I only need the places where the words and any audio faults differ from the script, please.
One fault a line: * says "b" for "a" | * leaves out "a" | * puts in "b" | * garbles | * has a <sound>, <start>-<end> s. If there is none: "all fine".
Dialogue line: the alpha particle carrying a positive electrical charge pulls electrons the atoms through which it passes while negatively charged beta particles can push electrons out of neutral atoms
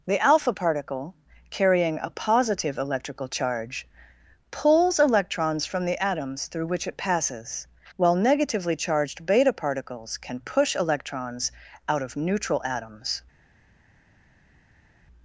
* puts in "from"